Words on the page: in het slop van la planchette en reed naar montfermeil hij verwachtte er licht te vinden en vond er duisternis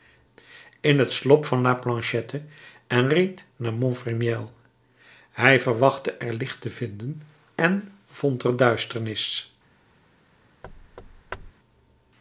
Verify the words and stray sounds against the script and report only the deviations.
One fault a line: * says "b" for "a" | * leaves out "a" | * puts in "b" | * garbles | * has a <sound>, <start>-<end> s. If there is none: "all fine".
* has a thud, 10.6-11.5 s